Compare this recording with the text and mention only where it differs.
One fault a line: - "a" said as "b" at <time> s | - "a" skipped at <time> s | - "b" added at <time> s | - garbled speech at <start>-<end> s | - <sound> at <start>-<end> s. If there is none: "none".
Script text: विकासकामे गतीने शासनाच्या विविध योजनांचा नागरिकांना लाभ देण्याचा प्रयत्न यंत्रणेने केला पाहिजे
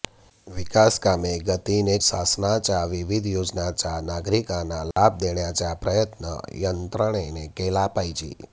- dropout at 4.9-5.0 s